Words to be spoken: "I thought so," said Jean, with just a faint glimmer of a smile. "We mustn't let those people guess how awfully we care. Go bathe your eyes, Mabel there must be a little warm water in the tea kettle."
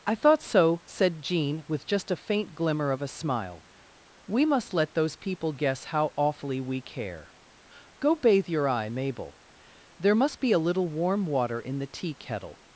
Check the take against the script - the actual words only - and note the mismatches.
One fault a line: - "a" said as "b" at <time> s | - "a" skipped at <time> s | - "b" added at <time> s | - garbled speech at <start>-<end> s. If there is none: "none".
- "mustn't" said as "must" at 4.5 s
- "eyes" said as "eye" at 8.7 s